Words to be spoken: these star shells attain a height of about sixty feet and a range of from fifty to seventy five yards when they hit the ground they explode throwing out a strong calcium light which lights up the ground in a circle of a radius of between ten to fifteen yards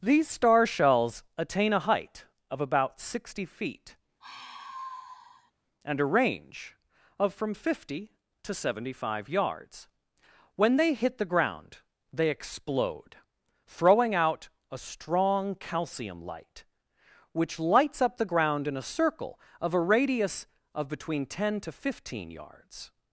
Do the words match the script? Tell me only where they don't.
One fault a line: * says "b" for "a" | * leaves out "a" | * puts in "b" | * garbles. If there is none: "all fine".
all fine